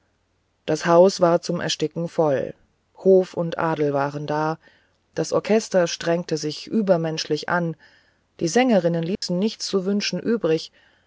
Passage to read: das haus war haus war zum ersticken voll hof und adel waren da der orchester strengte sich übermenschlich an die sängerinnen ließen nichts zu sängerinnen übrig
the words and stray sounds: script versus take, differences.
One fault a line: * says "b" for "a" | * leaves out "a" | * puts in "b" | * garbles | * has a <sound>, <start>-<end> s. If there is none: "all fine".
* leaves out "haus war"
* says "das" for "der"
* has a dropout, 9.1-9.2 s
* says "wünschen" for "sängerinnen"